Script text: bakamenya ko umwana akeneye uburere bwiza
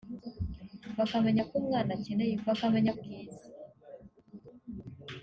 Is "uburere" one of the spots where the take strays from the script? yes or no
yes